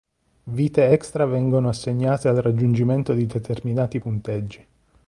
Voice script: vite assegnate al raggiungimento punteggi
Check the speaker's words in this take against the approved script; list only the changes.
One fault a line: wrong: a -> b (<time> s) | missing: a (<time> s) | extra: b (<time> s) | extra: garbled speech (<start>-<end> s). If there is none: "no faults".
extra: extra vengono (0.9 s)
extra: di determinati (3.1 s)